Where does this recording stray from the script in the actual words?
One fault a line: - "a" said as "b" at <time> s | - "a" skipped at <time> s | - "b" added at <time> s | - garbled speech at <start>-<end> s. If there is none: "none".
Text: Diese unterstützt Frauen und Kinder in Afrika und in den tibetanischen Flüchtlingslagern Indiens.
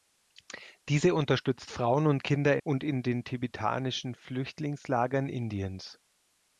- "in Afrika" skipped at 2.6 s